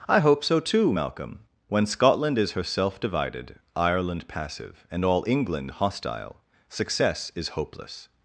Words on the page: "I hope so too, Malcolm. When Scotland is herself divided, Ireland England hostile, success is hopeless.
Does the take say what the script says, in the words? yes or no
no